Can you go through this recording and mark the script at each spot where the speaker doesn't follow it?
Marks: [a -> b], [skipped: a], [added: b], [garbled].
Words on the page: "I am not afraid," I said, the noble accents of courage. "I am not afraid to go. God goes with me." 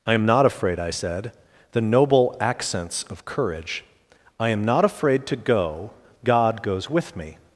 "I am not afraid," I said, the noble accents of courage. "I am not afraid to go. God goes with me."